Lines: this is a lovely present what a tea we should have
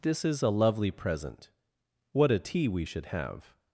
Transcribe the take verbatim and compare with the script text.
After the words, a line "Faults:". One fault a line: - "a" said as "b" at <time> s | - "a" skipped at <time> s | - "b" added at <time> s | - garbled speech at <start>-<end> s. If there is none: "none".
this is a lovely present what a tea we should have
Faults:
none